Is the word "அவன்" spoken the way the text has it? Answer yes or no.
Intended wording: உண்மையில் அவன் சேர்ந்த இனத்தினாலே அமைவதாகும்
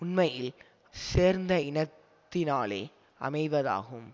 no